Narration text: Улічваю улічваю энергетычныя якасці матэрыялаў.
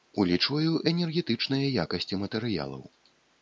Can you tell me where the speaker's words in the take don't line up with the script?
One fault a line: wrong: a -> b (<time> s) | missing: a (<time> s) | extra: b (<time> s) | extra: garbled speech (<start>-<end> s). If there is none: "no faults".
missing: улічваю (0.7 s)